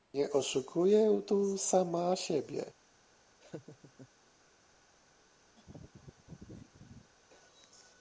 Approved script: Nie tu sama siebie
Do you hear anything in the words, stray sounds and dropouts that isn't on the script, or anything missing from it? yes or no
yes